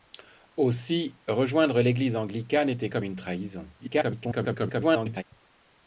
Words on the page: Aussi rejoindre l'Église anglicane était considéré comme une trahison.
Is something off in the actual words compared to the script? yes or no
yes